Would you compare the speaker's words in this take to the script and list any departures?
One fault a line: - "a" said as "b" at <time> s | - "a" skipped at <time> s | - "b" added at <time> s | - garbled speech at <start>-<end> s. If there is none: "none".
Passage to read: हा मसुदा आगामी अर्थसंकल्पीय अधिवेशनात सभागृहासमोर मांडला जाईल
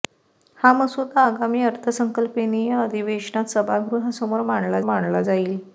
- "मांडला" added at 4.8 s